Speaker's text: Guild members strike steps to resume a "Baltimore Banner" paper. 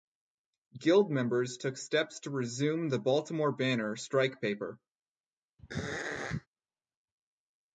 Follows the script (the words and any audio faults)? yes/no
no